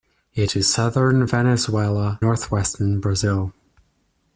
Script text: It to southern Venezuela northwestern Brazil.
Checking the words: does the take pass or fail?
pass